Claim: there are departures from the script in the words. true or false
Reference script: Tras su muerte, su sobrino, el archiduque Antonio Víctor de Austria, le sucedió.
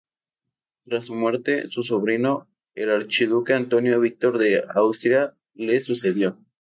false